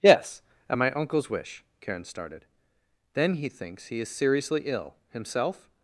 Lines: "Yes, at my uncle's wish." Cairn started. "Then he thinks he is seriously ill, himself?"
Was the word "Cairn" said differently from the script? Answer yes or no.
yes